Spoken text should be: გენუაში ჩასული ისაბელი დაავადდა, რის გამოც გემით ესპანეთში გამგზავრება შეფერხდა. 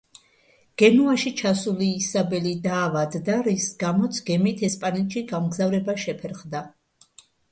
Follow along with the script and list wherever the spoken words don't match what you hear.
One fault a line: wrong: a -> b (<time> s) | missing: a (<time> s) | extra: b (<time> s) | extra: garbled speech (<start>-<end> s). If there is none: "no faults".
no faults